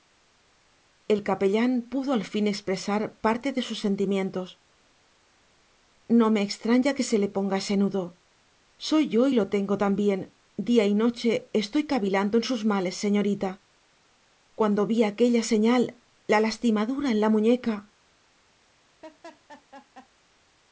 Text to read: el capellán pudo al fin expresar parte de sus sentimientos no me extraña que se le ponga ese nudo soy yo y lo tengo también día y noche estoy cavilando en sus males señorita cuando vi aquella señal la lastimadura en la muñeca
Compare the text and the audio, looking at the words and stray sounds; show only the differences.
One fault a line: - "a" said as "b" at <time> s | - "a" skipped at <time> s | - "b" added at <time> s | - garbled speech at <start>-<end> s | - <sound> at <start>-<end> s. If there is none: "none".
- laugh at 19.0-20.1 s